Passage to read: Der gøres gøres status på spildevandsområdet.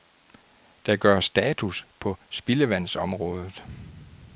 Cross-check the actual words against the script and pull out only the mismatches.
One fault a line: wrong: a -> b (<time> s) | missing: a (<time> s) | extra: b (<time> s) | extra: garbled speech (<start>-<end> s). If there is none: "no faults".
missing: gøres (1.2 s)